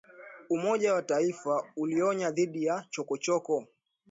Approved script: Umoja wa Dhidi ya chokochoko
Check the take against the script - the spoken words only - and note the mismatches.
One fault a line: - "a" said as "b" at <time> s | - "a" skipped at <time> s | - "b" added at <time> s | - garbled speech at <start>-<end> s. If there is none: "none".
- "Mataifa ulionya" added at 0.9 s